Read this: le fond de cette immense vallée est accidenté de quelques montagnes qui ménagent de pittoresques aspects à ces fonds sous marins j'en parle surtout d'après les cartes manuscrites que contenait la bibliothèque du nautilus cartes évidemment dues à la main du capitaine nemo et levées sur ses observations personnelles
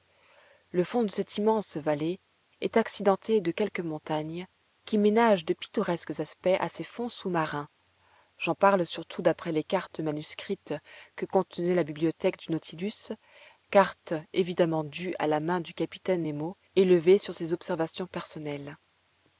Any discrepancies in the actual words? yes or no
no